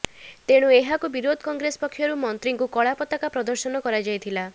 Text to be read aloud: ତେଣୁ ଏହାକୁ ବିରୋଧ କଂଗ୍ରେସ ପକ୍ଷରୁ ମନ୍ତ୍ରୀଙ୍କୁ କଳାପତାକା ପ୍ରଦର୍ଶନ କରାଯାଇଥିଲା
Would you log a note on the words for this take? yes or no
no